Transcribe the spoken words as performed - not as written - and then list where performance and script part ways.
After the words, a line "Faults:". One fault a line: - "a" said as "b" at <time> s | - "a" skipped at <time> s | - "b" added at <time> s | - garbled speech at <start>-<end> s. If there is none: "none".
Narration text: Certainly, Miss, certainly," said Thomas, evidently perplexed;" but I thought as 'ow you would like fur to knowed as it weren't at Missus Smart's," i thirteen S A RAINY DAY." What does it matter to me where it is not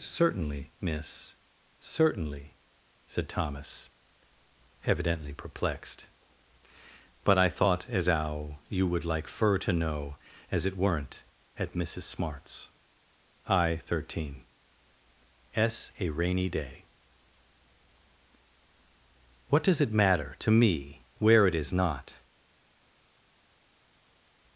Certainly, Miss, certainly," said Thomas, evidently perplexed;" but I thought as 'ow you would like fur to know as it weren't at Missus Smart's," i thirteen S A RAINY DAY." What does it matter to me where it is not
Faults:
- "knowed" said as "know" at 9.7 s